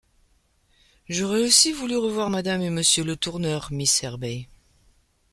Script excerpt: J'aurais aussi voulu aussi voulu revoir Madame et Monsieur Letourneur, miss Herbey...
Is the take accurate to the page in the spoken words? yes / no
no